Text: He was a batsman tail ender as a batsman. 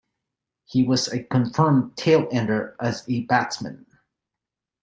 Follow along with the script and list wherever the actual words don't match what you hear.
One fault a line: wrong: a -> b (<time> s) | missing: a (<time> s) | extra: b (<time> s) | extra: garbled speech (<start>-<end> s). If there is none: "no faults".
wrong: batsman -> confirmed (1.2 s)